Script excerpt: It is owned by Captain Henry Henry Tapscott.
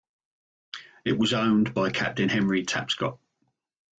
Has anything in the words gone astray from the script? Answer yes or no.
yes